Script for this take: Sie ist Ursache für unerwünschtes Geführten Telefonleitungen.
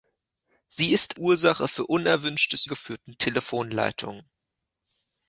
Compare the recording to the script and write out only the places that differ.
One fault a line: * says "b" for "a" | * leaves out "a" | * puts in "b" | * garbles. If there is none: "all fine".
all fine